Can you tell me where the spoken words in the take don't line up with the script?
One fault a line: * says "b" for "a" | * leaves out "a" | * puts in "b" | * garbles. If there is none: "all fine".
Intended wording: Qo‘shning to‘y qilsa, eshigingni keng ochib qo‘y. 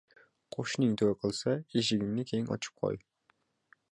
all fine